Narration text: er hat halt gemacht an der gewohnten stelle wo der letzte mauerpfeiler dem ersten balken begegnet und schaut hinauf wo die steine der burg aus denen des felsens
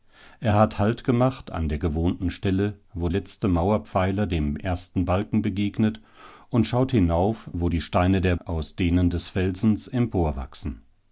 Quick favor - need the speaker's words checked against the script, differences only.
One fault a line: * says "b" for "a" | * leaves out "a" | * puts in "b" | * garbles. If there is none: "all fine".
* leaves out "der"
* leaves out "burg"